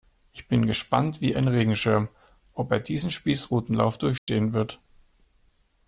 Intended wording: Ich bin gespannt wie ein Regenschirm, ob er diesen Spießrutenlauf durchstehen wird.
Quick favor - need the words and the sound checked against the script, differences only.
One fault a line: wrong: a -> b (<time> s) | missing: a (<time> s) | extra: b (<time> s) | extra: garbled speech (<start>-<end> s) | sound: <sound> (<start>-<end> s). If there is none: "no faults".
sound: dropout (4.2-4.3 s)